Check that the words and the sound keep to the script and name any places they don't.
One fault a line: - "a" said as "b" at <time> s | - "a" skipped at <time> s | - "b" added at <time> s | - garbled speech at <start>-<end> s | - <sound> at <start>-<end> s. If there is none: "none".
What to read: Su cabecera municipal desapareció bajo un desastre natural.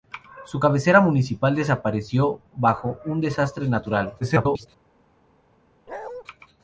- garbled speech at 4.2-4.7 s
- bark at 5.9-6.2 s